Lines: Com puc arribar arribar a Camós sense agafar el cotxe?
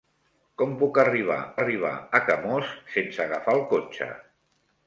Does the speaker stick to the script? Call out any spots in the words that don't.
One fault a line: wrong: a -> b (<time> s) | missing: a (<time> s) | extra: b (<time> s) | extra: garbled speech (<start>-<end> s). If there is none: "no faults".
no faults